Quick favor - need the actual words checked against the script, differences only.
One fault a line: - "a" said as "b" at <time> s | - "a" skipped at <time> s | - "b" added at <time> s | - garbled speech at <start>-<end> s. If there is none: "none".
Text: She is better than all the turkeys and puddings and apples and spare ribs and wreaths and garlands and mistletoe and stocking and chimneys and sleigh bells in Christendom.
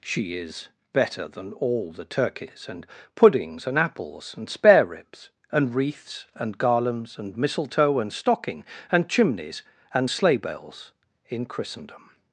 none